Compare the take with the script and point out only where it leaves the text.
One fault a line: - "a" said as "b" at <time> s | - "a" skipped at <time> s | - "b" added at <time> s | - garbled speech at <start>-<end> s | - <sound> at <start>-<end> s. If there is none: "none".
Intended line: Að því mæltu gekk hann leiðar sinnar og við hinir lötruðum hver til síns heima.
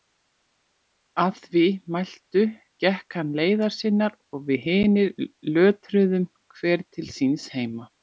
none